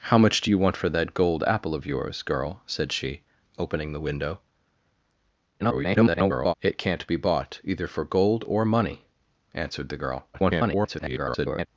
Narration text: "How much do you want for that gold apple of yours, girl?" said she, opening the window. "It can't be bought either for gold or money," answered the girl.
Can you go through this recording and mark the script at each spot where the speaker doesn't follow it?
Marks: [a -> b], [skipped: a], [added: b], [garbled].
"How much do you want for that gold apple of yours, girl?" said she, opening the window. [garbled] "It can't be bought either for gold or money," answered the girl. [garbled]